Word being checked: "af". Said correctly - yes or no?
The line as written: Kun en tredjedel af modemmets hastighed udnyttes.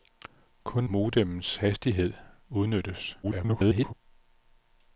no